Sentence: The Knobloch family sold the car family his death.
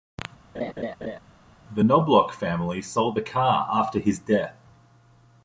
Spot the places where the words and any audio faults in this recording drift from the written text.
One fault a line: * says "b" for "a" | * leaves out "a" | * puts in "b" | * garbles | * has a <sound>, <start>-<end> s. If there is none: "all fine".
* has a laugh, 0.5-1.2 s
* says "after" for "family"